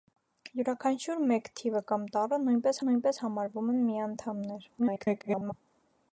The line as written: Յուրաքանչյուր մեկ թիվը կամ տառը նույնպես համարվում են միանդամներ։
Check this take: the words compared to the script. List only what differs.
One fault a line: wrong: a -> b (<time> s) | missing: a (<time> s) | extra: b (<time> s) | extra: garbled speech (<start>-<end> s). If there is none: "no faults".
extra: նույնպես (2.9 s)
extra: garbled speech (4.8-5.5 s)